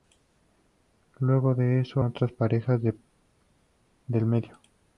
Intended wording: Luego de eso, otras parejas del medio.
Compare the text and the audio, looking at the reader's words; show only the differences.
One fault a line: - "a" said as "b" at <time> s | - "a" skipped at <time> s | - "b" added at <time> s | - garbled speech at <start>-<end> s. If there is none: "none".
none